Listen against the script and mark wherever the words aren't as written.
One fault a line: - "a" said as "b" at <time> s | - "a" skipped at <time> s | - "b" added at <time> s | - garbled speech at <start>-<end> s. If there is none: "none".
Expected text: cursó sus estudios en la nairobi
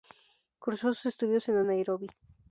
none